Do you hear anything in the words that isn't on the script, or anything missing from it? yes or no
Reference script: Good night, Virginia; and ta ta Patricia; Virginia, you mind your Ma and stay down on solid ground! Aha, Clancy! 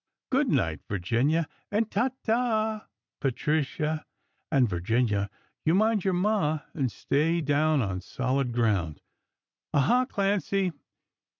yes